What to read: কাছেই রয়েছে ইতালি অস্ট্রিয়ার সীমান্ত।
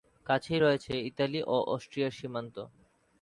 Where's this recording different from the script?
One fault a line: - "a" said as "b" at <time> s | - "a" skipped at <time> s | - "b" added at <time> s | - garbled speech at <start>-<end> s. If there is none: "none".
- "ও" added at 1.5 s